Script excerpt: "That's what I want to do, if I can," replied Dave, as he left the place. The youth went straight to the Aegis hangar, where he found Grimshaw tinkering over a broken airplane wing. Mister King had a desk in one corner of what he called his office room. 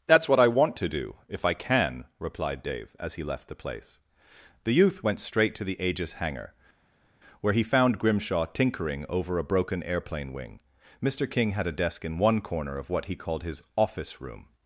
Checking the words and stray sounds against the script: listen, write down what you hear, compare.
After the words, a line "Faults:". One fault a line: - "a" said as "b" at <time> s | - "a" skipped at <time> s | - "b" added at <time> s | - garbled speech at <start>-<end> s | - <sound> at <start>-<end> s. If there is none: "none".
"That's what I want to do, if I can," replied Dave, as he left the place. The youth went straight to the Aegis hangar, where he found Grimshaw tinkering over a broken airplane wing. Mister King had a desk in one corner of what he called his office room.
Faults:
none